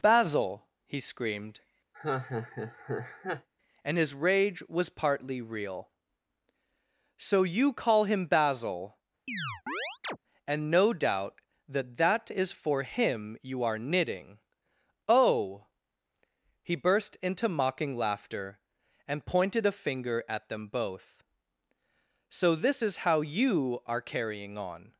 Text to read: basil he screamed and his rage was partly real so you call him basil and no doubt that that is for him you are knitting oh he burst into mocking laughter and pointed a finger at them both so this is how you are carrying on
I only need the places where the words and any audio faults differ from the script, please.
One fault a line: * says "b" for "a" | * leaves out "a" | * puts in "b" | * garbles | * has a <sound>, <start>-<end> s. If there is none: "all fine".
* has a laugh, 1.9-3.5 s
* has a chirp, 9.3-10.2 s